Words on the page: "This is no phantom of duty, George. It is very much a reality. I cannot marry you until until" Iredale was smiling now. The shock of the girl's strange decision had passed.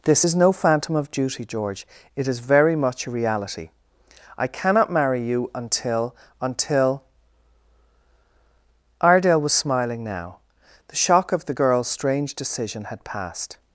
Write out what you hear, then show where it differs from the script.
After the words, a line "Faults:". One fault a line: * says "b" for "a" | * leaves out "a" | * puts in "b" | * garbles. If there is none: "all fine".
"This is no phantom of duty, George. It is very much a reality. I cannot marry you until until" Iredale was smiling now. The shock of the girl's strange decision had passed.
Faults:
all fine